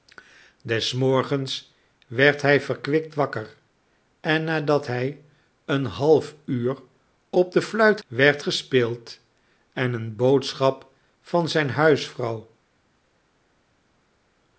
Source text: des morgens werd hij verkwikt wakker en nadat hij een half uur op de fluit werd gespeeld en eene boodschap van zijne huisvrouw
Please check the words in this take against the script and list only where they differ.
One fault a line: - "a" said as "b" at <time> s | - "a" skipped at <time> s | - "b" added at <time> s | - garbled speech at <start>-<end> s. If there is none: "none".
none